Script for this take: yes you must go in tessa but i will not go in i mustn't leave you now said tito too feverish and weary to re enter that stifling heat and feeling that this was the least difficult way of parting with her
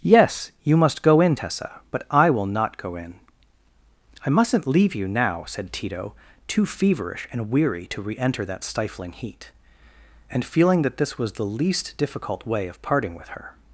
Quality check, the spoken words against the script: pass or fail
pass